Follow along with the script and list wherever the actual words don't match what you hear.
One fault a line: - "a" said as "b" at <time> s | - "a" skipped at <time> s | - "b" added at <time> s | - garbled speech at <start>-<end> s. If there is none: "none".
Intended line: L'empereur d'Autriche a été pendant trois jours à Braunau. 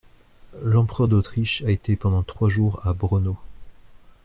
none